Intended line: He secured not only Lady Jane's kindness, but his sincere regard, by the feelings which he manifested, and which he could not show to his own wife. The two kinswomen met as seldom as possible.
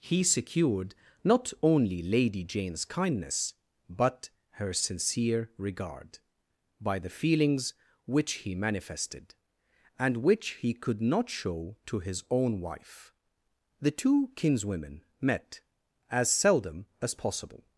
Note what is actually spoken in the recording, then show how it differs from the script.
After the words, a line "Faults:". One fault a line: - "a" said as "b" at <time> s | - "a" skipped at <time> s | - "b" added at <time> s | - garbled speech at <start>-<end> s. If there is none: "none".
He secured not only Lady Jane's kindness, but her sincere regard, by the feelings which he manifested, and which he could not show to his own wife. The two kinswomen met as seldom as possible.
Faults:
- "his" said as "her" at 4.5 s